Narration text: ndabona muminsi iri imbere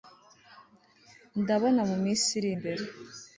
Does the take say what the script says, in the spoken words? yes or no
yes